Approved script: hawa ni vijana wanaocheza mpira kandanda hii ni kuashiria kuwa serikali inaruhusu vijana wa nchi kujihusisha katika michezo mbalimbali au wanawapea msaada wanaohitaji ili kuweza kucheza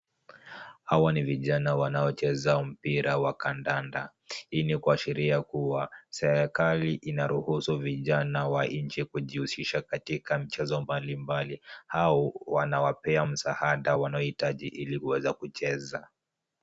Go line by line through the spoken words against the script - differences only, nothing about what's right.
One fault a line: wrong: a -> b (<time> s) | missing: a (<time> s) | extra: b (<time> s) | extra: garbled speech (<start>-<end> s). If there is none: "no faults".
extra: wa (3.2 s)